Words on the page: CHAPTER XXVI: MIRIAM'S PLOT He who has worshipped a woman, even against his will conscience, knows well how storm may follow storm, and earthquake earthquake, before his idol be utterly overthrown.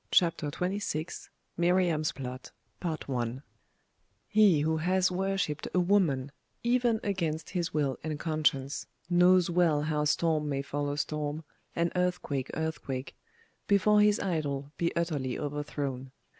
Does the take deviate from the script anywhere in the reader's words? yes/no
yes